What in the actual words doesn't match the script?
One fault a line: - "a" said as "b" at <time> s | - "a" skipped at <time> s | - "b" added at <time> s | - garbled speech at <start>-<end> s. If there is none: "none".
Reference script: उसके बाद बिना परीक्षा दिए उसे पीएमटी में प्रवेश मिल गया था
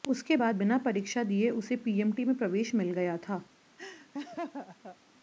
none